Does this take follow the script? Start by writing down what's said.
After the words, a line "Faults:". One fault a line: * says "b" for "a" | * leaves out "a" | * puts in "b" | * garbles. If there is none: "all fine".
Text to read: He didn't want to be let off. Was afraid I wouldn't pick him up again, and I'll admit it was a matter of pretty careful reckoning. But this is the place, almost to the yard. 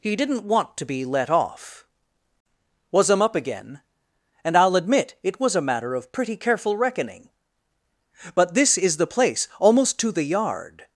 He didn't want to be let off. Was him up again, and I'll admit it was a matter of pretty careful reckoning. But this is the place, almost to the yard.
Faults:
* leaves out "afraid I wouldn't pick"